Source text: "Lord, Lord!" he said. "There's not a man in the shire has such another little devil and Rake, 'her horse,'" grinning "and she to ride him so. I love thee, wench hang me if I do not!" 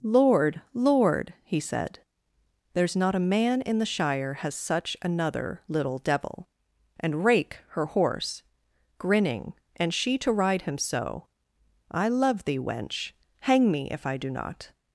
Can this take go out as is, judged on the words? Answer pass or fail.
pass